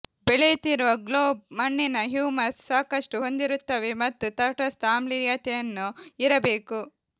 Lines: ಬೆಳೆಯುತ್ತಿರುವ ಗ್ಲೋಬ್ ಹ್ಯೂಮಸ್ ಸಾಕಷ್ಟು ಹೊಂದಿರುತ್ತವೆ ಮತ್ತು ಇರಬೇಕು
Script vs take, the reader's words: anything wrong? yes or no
yes